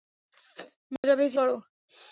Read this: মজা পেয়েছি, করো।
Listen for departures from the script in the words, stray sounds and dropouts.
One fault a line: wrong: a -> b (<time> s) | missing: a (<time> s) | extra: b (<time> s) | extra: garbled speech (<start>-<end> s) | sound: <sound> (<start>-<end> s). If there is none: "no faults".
sound: dropout (1.0-1.0 s)